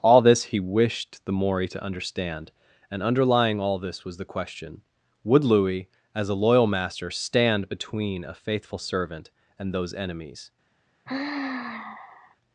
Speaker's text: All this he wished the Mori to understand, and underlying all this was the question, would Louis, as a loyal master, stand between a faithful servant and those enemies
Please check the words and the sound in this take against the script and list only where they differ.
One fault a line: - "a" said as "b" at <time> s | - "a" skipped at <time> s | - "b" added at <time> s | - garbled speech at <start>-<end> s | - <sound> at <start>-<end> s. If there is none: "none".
- sigh at 11.1-12.4 s